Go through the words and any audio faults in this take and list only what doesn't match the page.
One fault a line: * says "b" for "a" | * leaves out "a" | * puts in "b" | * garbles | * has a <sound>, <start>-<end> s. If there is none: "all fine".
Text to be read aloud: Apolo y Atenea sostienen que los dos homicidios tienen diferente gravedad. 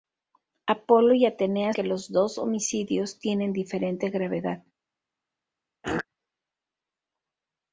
* leaves out "sostienen"
* has a throat clearing, 5.8-6.1 s